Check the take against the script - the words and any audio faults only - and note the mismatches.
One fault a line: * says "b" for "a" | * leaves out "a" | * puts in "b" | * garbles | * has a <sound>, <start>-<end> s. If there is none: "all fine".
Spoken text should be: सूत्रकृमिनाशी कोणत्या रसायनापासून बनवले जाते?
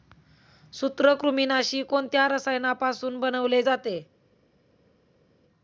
all fine